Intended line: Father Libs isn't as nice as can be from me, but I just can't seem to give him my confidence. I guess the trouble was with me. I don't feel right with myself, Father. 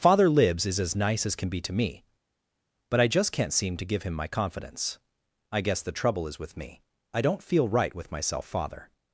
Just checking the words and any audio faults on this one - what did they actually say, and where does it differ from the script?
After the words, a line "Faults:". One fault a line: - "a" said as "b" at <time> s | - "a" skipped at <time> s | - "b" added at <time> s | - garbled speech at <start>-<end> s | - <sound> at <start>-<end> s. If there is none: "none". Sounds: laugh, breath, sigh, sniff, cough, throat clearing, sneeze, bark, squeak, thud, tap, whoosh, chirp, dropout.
Father Libs is as nice as can be to me, but I just can't seem to give him my confidence. I guess the trouble is with me. I don't feel right with myself, Father.
Faults:
- "isn't" said as "is" at 0.7 s
- "from" said as "to" at 1.6 s
- "was" said as "is" at 6.3 s